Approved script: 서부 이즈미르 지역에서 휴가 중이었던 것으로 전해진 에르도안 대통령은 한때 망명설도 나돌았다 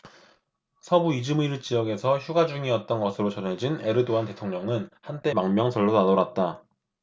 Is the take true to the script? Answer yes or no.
yes